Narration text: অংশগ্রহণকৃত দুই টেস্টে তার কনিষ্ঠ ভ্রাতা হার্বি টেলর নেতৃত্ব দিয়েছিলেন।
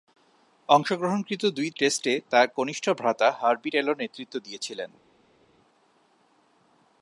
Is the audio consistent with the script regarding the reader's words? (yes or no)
yes